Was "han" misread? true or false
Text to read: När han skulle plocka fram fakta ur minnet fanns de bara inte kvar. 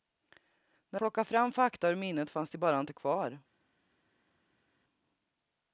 true